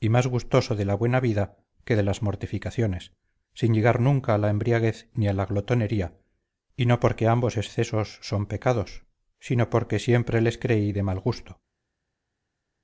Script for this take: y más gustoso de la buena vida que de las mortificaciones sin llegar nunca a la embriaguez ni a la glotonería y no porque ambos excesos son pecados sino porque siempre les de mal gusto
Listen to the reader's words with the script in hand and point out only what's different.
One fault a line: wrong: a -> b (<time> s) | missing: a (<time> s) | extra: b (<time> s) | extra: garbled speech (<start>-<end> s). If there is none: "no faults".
extra: creí (10.6 s)